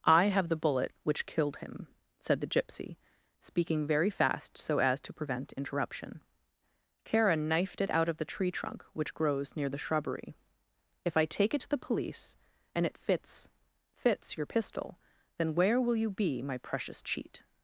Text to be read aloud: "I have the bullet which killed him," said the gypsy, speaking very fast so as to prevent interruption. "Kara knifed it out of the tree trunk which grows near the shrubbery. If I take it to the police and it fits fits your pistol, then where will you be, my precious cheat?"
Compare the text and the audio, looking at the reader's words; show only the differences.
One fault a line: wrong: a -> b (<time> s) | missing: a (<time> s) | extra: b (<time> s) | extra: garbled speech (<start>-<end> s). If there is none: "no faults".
no faults